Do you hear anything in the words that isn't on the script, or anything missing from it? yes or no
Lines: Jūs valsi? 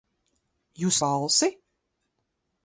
no